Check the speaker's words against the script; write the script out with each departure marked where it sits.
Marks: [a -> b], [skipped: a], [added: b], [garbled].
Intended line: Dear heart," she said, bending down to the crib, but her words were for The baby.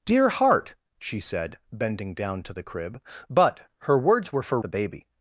Dear heart," she said, bending down to the crib, but her words were for The baby.